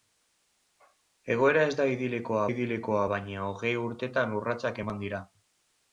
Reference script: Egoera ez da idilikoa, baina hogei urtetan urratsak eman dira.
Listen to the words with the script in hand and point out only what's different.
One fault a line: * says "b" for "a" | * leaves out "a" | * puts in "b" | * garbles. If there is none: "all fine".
* puts in "idilikoa"